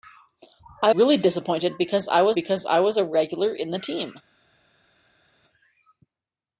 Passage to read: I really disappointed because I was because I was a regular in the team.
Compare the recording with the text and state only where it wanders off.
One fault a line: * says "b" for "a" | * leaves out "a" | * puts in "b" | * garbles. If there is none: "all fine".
all fine